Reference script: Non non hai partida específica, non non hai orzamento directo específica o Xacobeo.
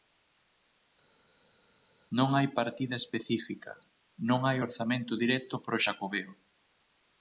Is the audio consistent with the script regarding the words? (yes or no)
no